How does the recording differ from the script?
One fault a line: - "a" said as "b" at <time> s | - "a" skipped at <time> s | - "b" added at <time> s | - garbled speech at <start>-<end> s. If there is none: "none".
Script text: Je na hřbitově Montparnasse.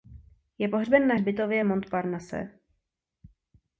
- "pohřben" added at 0.7 s